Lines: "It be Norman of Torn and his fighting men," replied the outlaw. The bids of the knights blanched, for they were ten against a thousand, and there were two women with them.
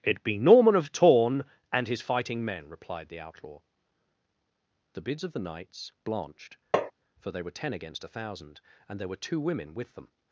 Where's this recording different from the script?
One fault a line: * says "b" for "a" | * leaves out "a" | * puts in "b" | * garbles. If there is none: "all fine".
all fine